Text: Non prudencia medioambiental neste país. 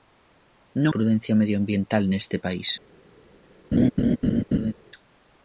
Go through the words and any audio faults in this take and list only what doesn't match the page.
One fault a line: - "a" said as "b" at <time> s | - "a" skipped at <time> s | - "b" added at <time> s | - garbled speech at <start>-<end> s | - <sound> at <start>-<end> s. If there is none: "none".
- laugh at 3.7-4.7 s